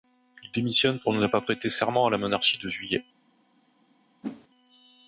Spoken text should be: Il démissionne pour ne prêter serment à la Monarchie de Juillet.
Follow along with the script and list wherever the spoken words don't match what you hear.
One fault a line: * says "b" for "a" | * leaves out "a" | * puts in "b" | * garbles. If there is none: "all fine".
* puts in "pas"